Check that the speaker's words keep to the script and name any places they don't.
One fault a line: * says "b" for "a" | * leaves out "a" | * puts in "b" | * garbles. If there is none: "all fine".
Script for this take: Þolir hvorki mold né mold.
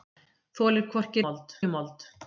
all fine